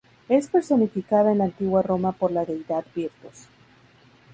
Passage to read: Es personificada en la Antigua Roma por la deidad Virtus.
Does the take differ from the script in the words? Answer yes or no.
no